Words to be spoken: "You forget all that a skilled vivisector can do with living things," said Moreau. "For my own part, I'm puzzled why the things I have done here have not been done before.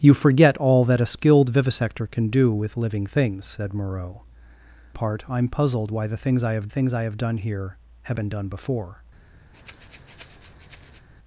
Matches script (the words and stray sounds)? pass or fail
fail